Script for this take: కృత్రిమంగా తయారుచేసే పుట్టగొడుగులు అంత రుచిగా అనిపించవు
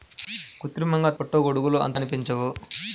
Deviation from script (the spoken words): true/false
true